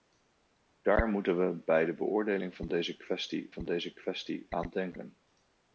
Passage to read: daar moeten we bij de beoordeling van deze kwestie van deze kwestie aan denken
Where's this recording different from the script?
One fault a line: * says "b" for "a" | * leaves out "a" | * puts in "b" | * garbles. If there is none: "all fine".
all fine